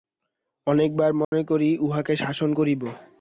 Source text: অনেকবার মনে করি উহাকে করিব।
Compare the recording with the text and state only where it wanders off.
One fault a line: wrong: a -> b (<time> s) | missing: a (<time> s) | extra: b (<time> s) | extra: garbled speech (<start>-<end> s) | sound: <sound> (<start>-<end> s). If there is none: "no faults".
sound: dropout (1.2-1.3 s)
extra: শাসন (2.1 s)